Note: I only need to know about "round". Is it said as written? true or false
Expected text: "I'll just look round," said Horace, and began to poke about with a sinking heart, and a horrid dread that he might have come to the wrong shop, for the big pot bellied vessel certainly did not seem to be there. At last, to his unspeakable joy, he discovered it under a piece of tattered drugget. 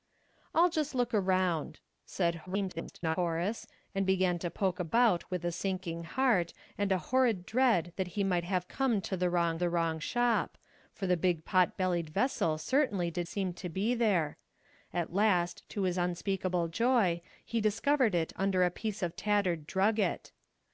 true